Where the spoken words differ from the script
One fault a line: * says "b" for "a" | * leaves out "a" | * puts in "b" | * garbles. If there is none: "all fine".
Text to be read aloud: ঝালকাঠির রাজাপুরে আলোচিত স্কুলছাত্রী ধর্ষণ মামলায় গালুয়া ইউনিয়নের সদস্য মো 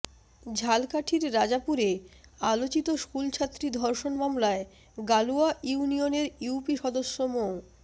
* puts in "ইউপি"